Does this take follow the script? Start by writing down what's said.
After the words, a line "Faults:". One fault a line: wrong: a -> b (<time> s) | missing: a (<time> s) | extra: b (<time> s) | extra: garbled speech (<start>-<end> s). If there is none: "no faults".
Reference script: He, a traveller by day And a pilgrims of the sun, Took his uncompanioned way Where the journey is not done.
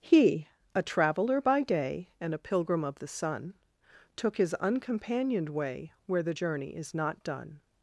He, a traveller by day And a pilgrim of the sun, Took his uncompanioned way Where the journey is not done.
Faults:
wrong: pilgrims -> pilgrim (2.4 s)